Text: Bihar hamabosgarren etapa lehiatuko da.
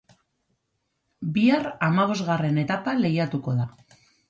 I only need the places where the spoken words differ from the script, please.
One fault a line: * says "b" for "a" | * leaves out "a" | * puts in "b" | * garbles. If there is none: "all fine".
all fine